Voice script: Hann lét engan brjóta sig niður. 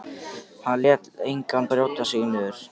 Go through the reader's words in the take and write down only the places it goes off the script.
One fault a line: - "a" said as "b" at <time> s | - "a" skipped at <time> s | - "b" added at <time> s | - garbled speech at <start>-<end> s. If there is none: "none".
none